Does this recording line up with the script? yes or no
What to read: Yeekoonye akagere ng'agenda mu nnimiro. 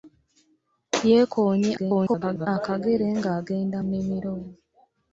no